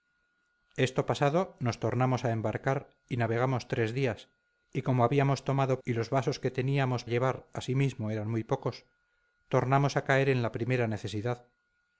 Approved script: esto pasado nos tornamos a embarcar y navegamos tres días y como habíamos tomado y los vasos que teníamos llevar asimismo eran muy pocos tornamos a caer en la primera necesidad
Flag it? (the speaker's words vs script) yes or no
no